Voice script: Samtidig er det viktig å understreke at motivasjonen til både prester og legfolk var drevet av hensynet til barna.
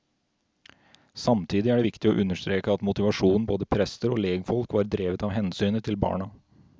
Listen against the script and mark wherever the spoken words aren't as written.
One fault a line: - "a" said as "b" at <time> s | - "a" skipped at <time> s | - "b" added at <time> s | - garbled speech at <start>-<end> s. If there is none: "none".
- "til" skipped at 3.5 s